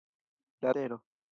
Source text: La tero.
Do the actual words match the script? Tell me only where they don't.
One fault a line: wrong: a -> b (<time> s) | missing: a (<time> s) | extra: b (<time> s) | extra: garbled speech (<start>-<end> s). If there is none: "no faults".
no faults